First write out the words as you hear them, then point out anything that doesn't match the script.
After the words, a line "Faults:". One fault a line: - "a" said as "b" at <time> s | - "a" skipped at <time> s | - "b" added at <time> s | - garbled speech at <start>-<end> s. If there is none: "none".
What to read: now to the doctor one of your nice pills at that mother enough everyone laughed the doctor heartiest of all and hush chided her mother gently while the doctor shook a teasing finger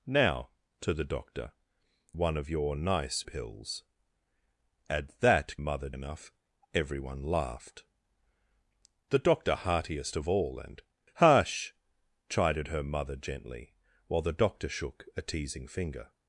now to the doctor one of your nice pills at that mother enough everyone laughed the doctor heartiest of all and hush chided her mother gently while the doctor shook a teasing finger
Faults:
none